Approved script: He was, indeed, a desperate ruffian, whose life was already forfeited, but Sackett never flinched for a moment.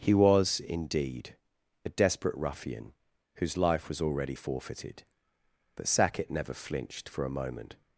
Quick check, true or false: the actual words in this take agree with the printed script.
true